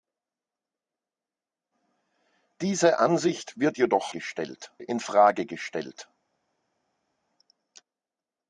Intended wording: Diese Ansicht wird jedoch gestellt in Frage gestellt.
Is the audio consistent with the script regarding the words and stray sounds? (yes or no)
yes